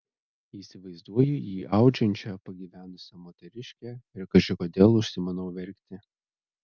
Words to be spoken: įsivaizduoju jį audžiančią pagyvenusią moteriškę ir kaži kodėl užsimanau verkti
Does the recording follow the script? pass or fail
pass